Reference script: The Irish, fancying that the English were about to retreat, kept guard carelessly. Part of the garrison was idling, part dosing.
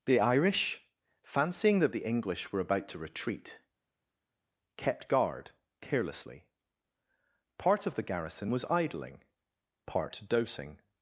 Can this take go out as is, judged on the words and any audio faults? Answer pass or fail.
pass